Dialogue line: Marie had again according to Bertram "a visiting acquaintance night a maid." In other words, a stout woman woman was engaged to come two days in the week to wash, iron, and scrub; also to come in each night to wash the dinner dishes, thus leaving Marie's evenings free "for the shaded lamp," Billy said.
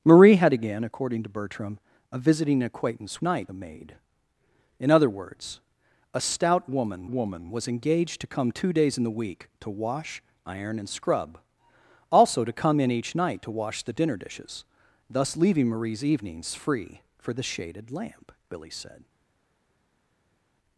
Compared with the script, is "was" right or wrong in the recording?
right